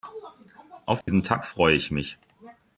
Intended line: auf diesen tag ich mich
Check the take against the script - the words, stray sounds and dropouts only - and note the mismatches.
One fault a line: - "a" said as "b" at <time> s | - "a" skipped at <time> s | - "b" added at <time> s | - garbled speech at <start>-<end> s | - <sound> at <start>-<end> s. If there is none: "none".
- dropout at 1.0-1.1 s
- "freue" added at 1.4 s